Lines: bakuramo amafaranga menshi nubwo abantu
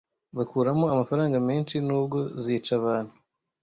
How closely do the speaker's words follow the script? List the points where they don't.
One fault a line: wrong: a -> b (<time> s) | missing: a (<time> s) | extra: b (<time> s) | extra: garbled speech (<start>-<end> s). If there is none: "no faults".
extra: zica (2.4 s)